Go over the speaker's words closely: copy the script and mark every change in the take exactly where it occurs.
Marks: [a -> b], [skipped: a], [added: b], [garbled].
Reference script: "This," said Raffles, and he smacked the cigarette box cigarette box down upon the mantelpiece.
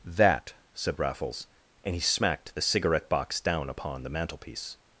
["This," -> That] said Raffles, and he smacked the cigarette box [skipped: cigarette box] down upon the mantelpiece.